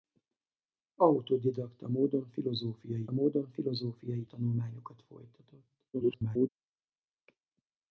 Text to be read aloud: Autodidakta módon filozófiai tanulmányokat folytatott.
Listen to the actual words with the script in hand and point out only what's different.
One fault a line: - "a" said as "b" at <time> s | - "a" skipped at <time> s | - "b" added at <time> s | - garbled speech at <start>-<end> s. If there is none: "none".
- "módon filozófiai" added at 3.1 s
- garbled speech at 5.9-6.5 s